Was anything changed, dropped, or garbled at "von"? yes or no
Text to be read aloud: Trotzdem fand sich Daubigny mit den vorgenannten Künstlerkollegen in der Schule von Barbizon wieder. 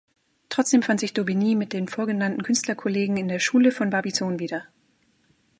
no